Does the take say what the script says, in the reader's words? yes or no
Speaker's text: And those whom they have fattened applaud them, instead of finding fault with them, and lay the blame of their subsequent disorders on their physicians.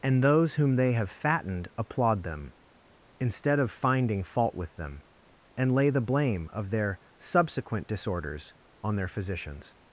yes